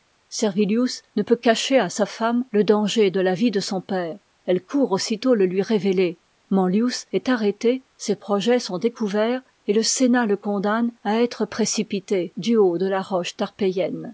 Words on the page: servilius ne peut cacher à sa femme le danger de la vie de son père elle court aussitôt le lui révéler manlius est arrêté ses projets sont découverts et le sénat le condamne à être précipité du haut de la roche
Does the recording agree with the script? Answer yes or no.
yes